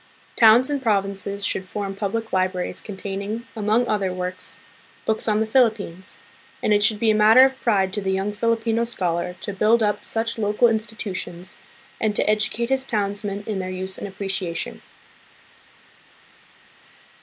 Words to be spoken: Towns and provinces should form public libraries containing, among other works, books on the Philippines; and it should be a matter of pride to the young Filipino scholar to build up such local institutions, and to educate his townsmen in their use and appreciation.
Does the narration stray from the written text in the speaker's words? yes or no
no